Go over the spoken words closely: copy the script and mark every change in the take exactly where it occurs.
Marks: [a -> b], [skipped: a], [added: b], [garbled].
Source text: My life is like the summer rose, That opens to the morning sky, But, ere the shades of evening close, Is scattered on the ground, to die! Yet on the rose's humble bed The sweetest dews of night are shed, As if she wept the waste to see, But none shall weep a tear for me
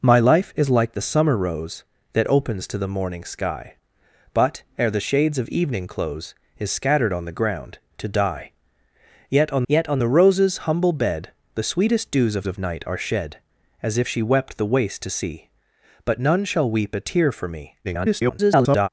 My life is like the summer rose, That opens to the morning sky, But, ere the shades of evening close, Is scattered on the ground, to die! Yet on [added: yet on] the rose's humble bed The sweetest dews of [added: of] night are shed, As if she wept the waste to see, But none shall weep a tear for me [garbled]